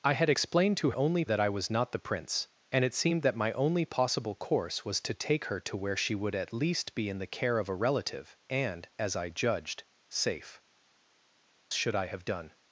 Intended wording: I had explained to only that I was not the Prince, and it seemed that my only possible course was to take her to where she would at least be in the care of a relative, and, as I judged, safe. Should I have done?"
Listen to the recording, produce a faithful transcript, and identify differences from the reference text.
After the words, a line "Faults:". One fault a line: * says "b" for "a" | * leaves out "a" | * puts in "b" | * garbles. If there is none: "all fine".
I had explained to only that I was not the Prince, and it seemed that my only possible course was to take her to where she would at least be in the care of a relative, and, as I judged, safe. Should I have done?"
Faults:
all fine